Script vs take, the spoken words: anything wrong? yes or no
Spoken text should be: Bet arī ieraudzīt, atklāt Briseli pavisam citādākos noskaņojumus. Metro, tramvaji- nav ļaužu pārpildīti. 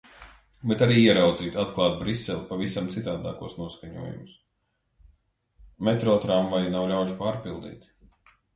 no